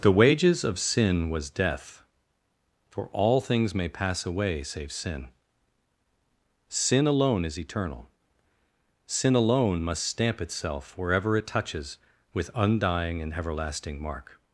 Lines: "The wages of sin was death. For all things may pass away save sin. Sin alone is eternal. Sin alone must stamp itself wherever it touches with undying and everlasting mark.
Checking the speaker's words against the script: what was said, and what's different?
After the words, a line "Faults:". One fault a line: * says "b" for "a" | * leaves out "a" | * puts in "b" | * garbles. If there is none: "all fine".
"The wages of sin was death. For all things may pass away save sin. Sin alone is eternal. Sin alone must stamp itself wherever it touches with undying and everlasting mark.
Faults:
all fine